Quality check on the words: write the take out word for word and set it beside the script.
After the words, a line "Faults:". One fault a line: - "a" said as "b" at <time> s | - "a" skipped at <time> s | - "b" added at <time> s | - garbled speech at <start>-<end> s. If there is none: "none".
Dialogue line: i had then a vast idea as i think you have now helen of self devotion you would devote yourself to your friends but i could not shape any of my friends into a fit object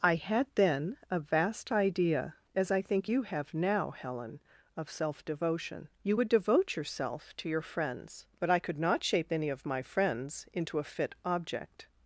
i had then a vast idea as i think you have now helen of self devotion you would devote yourself to your friends but i could not shape any of my friends into a fit object
Faults:
none